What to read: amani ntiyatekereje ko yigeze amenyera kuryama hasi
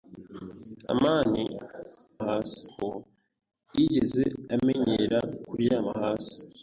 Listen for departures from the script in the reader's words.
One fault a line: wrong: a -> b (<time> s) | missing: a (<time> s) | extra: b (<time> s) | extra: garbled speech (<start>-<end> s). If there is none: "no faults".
wrong: ntiyatekereje -> hasi (2.3 s)